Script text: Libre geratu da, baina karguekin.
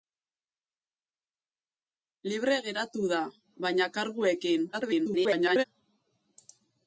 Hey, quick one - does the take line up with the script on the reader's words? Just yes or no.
no